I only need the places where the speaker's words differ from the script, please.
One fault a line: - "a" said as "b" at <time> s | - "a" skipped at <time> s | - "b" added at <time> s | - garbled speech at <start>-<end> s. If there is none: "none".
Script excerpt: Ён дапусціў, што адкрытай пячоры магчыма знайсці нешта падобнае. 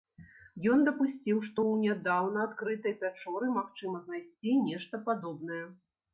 - "ў нядаўна" added at 1.6 s